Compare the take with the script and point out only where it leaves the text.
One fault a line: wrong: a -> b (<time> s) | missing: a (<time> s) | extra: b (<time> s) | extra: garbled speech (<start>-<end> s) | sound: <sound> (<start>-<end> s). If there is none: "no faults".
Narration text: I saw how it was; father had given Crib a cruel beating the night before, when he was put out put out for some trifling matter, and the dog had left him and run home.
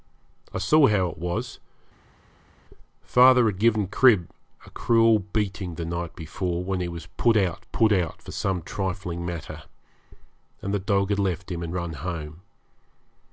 no faults